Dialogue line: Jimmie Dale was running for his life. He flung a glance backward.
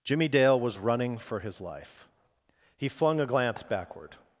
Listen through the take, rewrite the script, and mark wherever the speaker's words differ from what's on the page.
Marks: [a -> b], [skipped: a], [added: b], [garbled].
Jimmie Dale was running for his life. He flung a glance backward.